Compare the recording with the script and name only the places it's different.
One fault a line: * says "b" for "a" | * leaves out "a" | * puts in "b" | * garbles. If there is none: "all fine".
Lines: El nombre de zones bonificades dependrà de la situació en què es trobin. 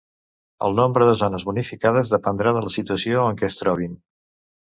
all fine